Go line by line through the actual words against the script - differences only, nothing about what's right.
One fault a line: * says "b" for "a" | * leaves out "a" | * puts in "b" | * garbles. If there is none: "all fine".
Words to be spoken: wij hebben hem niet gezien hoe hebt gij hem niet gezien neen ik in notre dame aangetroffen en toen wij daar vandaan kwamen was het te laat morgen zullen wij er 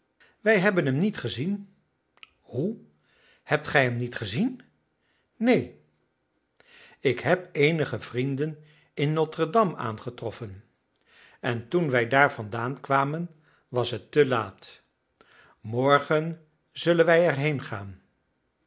* puts in "heb eenige vrienden"